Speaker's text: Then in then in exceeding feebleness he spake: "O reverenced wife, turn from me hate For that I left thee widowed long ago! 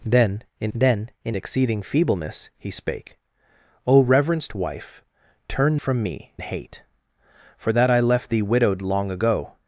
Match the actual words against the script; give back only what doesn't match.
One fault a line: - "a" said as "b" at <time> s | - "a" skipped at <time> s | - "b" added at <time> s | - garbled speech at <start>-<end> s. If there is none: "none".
none